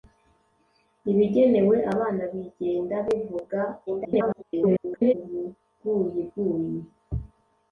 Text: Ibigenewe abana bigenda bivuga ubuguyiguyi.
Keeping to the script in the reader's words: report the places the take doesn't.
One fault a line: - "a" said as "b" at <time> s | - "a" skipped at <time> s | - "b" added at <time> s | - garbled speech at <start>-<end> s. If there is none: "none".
- garbled speech at 3.9-5.1 s